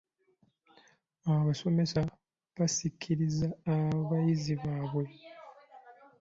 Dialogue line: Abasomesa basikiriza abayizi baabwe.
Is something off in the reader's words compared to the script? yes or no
no